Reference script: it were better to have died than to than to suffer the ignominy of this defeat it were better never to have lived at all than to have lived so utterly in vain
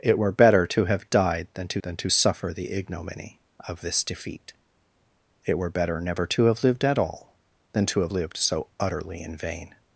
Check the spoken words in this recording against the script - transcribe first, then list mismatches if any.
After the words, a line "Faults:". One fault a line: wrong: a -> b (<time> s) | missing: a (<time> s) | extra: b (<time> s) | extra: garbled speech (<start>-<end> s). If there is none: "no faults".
it were better to have died than to than to suffer the ignominy of this defeat it were better never to have lived at all than to have lived so utterly in vain
Faults:
no faults